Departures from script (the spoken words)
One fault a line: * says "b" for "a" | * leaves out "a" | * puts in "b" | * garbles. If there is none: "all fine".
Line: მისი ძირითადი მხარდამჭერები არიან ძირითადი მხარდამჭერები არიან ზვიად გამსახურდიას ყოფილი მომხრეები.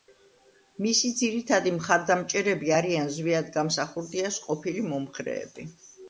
* leaves out "ძირითადი მხარდამჭერები არიან"